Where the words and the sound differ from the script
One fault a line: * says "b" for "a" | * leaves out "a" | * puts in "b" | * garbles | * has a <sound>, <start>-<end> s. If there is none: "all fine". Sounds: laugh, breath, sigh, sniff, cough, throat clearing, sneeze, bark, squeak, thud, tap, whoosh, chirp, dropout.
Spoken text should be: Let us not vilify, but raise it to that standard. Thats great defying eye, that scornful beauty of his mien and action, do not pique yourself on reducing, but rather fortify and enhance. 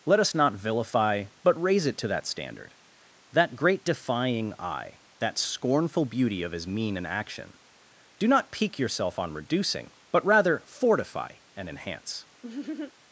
* says "That" for "Thats"
* has a laugh, 12.4-12.9 s